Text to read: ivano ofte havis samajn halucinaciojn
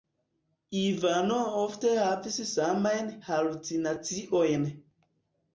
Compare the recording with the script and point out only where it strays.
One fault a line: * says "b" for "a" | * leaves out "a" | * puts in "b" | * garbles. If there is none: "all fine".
all fine